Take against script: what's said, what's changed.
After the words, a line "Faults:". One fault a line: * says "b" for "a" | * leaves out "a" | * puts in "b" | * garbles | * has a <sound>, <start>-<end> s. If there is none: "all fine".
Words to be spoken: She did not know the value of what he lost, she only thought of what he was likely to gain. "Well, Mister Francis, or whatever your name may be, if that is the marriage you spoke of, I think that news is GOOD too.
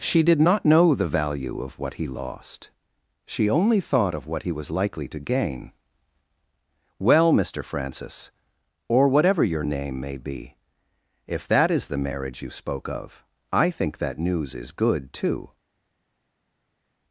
She did not know the value of what he lost, she only thought of what he was likely to gain. "Well, Mister Francis, or whatever your name may be, if that is the marriage you spoke of, I think that news is GOOD too.
Faults:
all fine